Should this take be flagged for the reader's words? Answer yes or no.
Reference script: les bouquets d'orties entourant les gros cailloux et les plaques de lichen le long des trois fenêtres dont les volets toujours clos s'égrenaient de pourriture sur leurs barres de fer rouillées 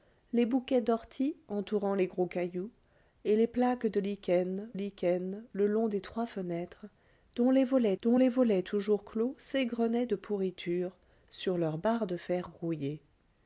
yes